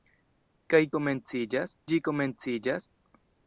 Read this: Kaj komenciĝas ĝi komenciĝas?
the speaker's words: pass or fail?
pass